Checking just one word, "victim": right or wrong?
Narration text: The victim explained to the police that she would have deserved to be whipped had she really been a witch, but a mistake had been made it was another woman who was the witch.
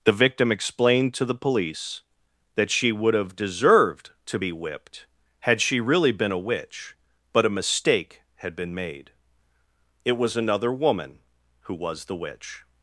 right